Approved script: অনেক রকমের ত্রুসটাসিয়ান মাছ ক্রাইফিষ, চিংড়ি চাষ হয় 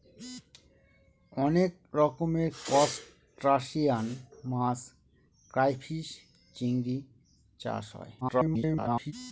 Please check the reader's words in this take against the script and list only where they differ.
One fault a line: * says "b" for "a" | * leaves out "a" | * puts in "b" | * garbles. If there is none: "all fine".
* garbles